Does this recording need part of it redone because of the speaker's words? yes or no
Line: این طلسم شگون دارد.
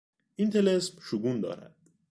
no